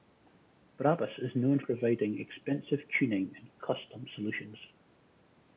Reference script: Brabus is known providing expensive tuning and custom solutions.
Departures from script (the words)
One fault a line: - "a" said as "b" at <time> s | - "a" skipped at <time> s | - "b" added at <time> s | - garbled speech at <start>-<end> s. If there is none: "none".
none